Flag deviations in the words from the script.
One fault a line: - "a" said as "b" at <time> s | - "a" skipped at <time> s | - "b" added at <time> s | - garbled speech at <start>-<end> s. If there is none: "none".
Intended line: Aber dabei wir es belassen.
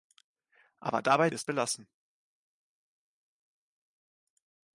none